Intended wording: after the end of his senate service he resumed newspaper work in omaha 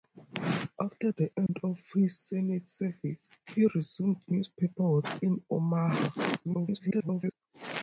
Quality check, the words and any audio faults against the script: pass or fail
fail